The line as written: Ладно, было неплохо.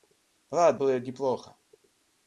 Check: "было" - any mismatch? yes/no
no